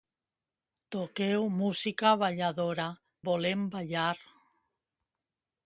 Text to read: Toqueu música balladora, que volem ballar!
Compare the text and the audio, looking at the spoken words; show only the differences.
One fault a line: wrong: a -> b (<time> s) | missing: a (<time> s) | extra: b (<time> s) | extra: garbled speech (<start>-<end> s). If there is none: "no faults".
missing: que (2.9 s)